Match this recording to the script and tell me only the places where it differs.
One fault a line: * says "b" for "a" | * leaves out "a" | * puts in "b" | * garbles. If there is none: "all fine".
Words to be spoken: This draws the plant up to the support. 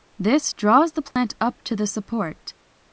all fine